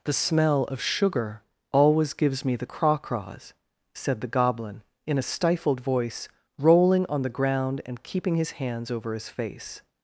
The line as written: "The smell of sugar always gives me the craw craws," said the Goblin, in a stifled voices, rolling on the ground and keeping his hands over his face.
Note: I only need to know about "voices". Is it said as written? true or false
false